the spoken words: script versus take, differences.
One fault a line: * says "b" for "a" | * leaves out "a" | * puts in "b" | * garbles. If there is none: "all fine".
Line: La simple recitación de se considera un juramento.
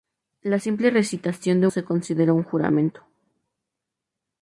all fine